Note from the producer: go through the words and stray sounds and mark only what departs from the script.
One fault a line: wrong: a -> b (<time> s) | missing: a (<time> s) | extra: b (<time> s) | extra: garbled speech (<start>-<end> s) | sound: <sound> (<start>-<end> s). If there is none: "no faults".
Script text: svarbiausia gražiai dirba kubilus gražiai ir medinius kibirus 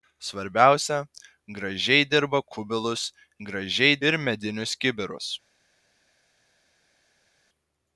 no faults